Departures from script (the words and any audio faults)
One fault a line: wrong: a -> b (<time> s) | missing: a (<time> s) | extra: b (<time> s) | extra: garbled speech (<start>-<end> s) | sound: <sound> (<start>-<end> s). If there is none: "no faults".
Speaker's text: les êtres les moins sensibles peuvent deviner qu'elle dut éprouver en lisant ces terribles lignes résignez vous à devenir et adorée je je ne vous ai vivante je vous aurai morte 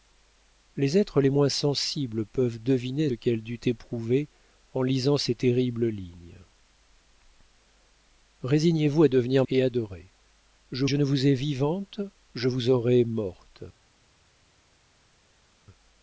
no faults